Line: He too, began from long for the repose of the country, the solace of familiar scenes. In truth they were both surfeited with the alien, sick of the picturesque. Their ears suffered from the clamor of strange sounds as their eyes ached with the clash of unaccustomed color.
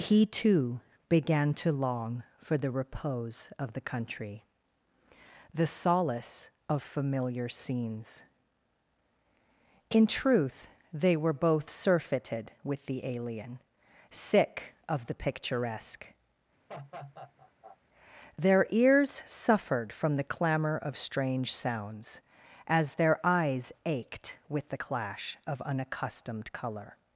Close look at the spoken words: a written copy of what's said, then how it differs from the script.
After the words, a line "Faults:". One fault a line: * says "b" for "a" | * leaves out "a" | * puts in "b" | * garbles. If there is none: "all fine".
He too, began to long for the repose of the country, the solace of familiar scenes. In truth they were both surfeited with the alien, sick of the picturesque. Their ears suffered from the clamor of strange sounds as their eyes ached with the clash of unaccustomed color.
Faults:
* says "to" for "from"